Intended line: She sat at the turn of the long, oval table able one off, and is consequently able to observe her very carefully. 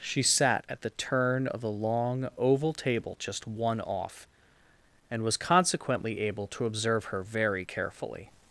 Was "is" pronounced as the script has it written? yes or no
no